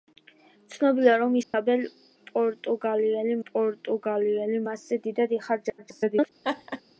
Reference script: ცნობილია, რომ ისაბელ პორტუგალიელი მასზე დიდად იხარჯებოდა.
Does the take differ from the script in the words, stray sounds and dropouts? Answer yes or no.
yes